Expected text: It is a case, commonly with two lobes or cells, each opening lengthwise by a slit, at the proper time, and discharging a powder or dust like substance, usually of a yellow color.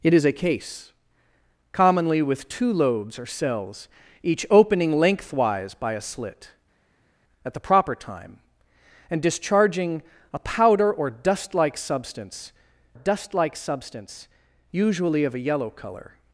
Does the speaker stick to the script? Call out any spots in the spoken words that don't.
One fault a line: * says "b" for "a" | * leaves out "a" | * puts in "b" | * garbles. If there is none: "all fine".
* puts in "dust like substance"